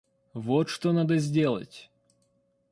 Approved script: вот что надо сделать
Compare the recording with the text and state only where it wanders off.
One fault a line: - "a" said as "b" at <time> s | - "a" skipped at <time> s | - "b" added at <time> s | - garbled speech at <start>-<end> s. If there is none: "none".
none